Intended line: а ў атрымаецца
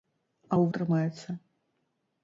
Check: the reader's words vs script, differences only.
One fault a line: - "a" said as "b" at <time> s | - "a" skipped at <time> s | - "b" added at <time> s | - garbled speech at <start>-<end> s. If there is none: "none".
none